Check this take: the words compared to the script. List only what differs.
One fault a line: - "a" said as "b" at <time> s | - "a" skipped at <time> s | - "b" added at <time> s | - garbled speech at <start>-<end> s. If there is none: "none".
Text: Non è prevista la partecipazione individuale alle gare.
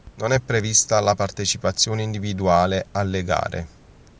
none